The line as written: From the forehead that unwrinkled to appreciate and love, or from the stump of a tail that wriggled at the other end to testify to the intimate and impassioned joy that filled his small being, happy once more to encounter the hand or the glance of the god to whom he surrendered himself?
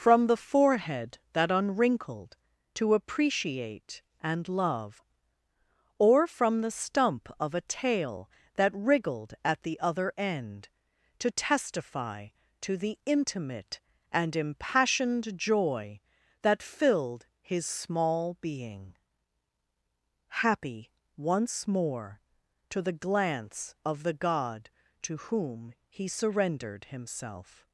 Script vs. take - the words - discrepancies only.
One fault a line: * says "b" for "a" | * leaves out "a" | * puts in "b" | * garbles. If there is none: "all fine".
* leaves out "encounter the hand or"